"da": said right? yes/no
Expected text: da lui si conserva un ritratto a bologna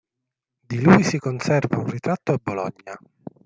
no